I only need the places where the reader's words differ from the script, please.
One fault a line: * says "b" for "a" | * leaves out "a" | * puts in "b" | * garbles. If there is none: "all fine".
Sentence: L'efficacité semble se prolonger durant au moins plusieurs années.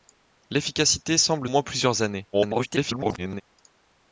* leaves out "se prolonger durant"
* garbles